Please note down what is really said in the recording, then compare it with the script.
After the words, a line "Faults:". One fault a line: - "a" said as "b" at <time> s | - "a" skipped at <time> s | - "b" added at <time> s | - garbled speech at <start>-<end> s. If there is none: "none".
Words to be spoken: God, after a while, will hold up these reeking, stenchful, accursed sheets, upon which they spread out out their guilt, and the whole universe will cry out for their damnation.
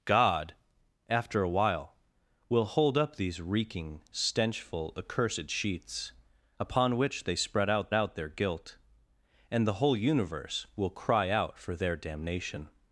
God, after a while, will hold up these reeking, stenchful, accursed sheets, upon which they spread out out their guilt, and the whole universe will cry out for their damnation.
Faults:
none